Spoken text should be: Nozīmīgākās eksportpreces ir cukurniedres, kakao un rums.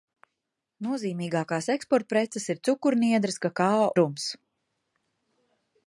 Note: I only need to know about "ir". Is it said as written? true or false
true